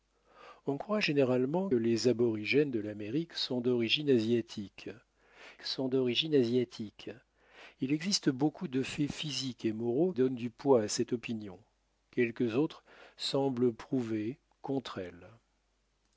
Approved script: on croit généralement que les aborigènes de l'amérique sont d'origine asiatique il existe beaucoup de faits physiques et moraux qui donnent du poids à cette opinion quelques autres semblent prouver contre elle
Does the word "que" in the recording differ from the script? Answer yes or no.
yes